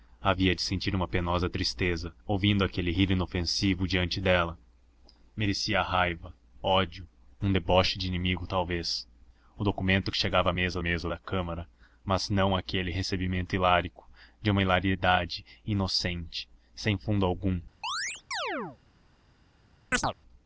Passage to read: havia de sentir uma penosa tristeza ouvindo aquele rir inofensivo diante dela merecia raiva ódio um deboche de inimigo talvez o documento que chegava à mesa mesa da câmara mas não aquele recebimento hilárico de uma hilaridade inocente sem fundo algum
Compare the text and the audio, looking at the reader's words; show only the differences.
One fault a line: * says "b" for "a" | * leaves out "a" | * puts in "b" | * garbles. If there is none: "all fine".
all fine